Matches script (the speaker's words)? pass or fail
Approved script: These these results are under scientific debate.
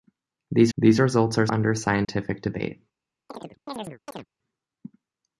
pass